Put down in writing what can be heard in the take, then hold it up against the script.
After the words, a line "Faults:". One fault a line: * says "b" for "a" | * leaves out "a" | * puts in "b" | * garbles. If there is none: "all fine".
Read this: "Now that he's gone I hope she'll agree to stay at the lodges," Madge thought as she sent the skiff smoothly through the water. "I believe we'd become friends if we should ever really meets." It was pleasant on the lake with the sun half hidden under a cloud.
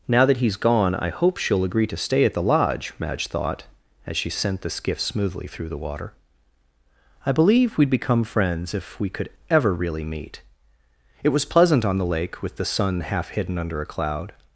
"Now that he's gone I hope she'll agree to stay at the lodge," Madge thought as she sent the skiff smoothly through the water. "I believe we'd become friends if we could ever really meet." It was pleasant on the lake with the sun half hidden under a cloud.
Faults:
* says "lodge" for "lodges"
* says "could" for "should"
* says "meet" for "meets"